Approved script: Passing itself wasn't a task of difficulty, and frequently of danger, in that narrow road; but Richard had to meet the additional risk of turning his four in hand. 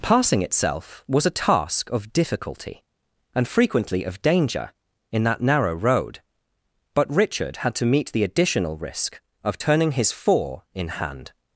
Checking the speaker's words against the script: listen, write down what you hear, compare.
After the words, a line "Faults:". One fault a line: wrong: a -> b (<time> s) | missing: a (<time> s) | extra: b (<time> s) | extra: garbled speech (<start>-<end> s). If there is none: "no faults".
Passing itself was a task of difficulty, and frequently of danger, in that narrow road; but Richard had to meet the additional risk of turning his four in hand.
Faults:
wrong: wasn't -> was (1.1 s)